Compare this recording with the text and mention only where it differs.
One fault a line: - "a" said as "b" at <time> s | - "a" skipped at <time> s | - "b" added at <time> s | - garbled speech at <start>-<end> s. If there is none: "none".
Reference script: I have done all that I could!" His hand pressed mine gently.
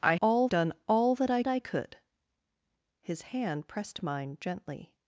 - "have" said as "all" at 0.2 s
- "I" added at 1.5 s